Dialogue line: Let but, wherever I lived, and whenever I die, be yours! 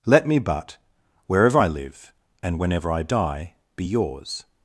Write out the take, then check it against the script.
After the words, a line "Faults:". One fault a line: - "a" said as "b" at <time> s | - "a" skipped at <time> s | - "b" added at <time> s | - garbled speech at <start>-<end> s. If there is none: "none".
Let me but, wherever I live, and whenever I die, be yours!
Faults:
- "me" added at 0.2 s
- "lived" said as "live" at 1.7 s